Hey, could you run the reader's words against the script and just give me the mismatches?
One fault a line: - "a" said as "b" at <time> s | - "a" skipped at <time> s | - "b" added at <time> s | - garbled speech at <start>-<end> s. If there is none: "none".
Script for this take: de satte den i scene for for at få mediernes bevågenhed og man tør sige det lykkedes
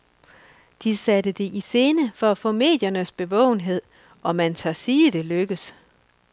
- "den" said as "det" at 1.3 s
- "for" skipped at 2.3 s